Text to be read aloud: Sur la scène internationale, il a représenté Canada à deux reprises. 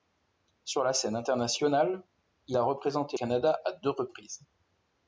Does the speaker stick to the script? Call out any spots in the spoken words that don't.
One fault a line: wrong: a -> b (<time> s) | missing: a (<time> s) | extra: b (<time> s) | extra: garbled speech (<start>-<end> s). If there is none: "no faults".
no faults